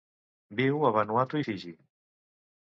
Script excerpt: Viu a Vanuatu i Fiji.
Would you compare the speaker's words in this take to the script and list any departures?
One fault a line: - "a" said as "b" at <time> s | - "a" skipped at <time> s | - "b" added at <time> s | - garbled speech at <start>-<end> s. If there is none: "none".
none